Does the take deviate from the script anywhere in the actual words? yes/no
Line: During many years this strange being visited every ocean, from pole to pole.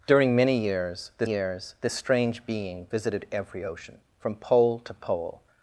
yes